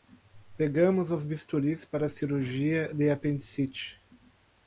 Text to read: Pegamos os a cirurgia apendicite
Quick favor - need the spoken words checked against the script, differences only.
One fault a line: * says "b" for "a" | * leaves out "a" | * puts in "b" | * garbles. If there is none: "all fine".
* puts in "bisturis para"
* puts in "de"